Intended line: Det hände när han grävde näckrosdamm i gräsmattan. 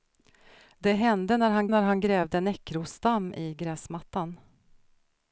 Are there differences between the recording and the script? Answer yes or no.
yes